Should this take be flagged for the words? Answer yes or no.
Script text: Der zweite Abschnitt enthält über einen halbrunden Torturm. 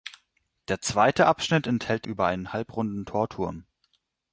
no